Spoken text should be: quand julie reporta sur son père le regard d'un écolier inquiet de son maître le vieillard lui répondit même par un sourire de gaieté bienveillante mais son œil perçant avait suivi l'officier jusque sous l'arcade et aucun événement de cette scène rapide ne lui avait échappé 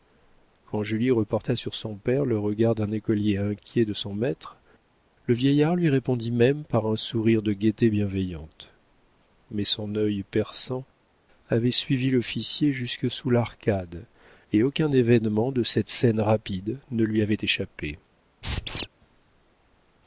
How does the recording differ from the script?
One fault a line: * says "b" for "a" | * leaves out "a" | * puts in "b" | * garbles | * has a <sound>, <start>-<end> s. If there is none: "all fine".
* has a squeak, 18.4-18.9 s